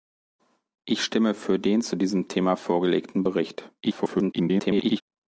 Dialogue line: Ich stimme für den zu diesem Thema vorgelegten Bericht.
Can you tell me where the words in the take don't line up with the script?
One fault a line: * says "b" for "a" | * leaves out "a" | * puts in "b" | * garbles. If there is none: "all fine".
* garbles